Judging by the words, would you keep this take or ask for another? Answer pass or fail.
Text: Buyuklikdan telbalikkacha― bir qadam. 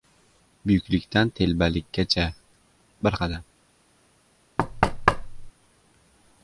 pass